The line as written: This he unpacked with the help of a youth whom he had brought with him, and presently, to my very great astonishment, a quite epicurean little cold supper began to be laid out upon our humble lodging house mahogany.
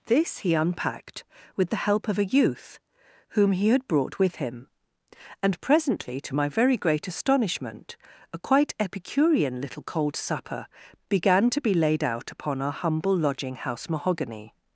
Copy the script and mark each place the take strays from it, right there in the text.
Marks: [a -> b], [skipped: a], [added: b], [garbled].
This he unpacked with the help of a youth whom he had brought with him, and presently, to my very great astonishment, a quite epicurean little cold supper began to be laid out upon our humble lodging house mahogany.